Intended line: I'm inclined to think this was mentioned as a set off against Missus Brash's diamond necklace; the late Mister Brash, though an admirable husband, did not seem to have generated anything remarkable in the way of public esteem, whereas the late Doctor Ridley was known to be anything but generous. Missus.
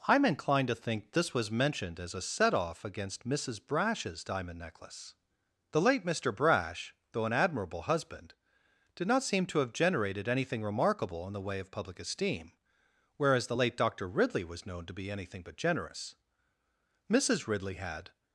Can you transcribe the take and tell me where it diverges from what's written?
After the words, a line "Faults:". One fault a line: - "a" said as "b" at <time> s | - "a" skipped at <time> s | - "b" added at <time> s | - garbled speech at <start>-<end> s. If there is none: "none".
I'm inclined to think this was mentioned as a set off against Missus Brash's diamond necklace; the late Mister Brash, though an admirable husband, did not seem to have generated anything remarkable in the way of public esteem, whereas the late Doctor Ridley was known to be anything but generous. Missus Ridley had
Faults:
- "Ridley had" added at 17.5 s